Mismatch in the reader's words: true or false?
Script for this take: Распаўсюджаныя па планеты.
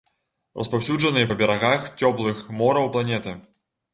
true